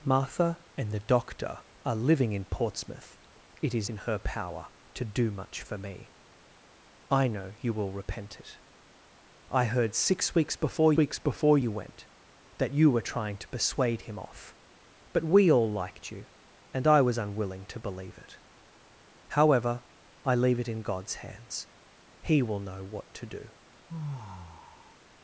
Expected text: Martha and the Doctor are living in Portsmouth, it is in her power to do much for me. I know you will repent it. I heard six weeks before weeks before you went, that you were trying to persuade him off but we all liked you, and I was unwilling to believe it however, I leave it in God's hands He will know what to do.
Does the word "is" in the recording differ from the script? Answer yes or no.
no